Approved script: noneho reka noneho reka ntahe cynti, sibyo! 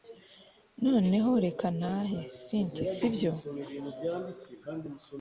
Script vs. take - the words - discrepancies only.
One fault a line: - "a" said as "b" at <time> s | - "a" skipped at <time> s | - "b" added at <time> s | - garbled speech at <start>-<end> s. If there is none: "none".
- "noneho reka" skipped at 1.7 s